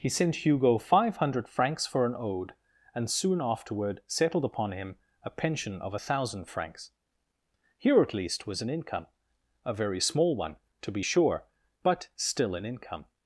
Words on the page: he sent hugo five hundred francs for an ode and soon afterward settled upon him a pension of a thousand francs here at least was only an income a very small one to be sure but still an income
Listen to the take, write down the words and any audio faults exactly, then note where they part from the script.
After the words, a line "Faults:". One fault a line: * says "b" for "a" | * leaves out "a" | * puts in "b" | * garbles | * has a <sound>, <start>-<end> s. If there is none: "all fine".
he sent hugo five hundred francs for an ode and soon afterward settled upon him a pension of a thousand francs here at least was an income a very small one to be sure but still an income
Faults:
* leaves out "only"